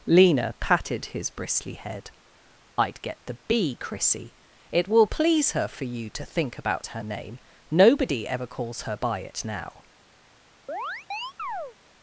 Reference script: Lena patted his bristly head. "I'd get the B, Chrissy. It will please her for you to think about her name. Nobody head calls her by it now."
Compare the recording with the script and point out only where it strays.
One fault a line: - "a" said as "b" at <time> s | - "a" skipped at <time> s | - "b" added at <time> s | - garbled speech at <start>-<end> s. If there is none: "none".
- "head" said as "ever" at 8.3 s